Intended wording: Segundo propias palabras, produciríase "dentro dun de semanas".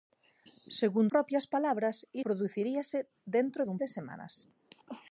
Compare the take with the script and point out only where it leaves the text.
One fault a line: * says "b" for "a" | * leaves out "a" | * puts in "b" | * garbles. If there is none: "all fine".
all fine